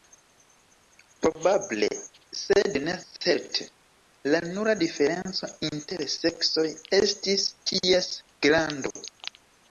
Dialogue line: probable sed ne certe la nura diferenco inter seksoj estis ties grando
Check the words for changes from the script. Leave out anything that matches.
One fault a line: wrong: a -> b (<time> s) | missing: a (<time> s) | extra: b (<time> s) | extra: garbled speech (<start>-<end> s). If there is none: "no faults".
no faults